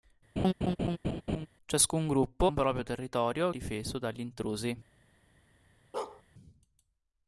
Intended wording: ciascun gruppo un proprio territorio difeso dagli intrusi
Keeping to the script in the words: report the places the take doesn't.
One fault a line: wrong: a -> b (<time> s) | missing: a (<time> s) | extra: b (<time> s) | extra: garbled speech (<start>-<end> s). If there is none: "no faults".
no faults